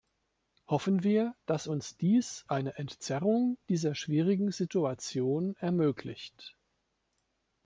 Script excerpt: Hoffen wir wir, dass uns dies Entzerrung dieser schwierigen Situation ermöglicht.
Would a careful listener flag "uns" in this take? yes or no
no